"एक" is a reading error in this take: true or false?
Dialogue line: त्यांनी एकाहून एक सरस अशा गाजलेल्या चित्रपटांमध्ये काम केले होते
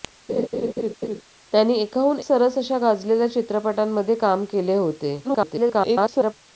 true